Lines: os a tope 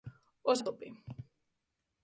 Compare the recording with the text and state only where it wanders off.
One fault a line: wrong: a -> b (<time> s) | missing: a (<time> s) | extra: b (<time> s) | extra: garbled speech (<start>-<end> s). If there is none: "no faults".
no faults